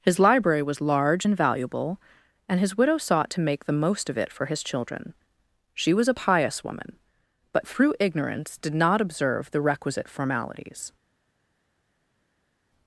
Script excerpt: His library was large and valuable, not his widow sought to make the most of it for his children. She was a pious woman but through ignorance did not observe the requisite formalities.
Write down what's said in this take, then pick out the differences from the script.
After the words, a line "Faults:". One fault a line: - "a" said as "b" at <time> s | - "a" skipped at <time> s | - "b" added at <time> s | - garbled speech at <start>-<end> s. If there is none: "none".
His library was large and valuable, and his widow sought to make the most of it for his children. She was a pious woman but through ignorance did not observe the requisite formalities.
Faults:
- "not" said as "and" at 2.5 s